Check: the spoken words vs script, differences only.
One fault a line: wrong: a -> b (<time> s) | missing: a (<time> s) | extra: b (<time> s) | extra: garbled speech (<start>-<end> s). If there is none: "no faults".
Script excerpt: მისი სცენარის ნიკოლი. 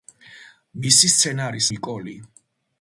no faults